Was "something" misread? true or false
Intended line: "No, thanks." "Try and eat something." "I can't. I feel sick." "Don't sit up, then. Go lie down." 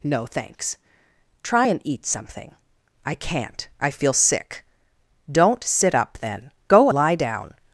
false